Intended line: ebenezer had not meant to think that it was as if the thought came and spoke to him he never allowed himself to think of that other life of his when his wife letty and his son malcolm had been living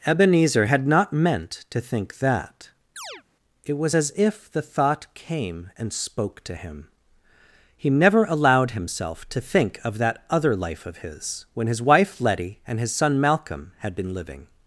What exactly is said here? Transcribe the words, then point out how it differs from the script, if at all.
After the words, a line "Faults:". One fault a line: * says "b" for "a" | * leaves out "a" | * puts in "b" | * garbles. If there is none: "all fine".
ebenezer had not meant to think that it was as if the thought came and spoke to him he never allowed himself to think of that other life of his when his wife letty and his son malcolm had been living
Faults:
all fine